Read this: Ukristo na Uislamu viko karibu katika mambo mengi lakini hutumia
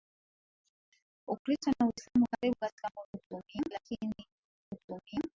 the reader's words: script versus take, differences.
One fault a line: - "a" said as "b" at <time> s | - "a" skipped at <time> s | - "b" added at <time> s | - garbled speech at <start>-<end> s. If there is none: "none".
- "viko" skipped at 2.2 s
- "mengi" said as "hutumia" at 3.1 s